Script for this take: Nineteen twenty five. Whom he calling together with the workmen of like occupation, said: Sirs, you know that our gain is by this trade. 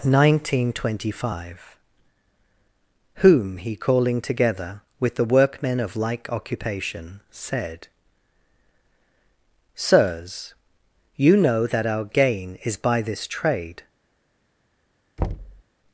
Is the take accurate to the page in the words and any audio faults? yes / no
no